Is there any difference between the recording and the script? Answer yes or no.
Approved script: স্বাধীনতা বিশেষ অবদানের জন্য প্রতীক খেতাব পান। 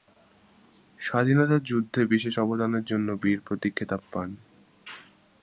yes